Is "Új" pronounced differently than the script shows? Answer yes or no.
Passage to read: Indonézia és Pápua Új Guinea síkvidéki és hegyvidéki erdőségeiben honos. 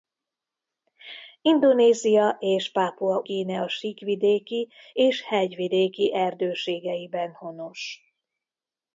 yes